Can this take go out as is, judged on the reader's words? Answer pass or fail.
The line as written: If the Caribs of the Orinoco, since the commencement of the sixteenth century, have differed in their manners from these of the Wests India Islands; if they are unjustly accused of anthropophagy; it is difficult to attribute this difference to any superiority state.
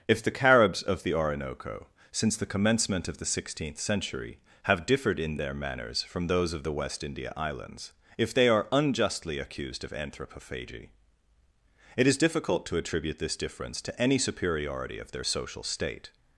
fail